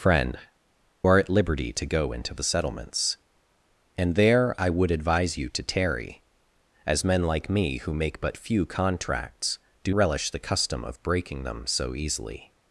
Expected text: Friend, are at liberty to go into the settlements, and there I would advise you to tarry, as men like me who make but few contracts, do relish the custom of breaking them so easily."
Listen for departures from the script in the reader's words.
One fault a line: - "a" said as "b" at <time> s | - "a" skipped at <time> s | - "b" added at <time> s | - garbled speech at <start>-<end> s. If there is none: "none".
none